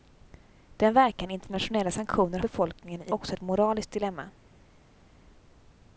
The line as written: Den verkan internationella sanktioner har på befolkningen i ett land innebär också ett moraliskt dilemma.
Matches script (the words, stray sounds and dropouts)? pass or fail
fail